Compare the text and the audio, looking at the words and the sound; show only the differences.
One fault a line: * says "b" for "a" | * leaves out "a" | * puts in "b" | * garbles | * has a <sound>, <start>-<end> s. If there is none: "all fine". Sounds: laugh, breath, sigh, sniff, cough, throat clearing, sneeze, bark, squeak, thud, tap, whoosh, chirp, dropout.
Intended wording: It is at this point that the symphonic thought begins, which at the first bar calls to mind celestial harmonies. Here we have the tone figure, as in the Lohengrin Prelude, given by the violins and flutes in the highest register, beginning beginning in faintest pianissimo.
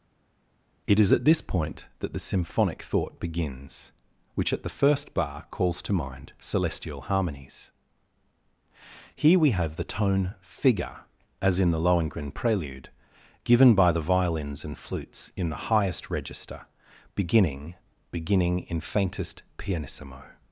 all fine